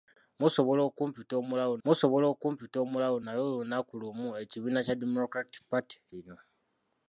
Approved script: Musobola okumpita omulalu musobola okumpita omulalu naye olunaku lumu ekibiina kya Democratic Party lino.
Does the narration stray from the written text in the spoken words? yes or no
no